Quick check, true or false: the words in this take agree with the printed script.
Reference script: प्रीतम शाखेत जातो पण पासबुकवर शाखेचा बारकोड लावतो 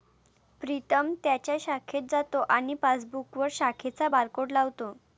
false